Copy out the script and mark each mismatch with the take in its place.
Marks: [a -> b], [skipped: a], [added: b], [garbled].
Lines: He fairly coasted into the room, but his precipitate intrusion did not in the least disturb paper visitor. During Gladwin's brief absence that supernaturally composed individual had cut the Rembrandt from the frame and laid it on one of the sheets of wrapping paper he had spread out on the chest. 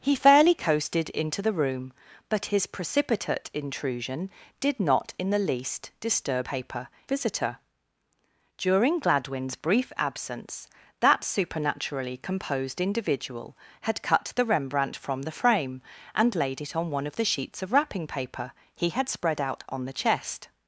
He fairly coasted into the room, but his precipitate intrusion did not in the least disturb paper visitor. During Gladwin's brief absence that supernaturally composed individual had cut the Rembrandt from the frame and laid it on one of the sheets of wrapping paper he had spread out on the chest.